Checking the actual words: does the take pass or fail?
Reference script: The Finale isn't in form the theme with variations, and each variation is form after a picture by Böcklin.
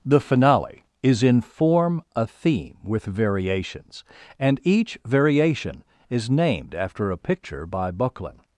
fail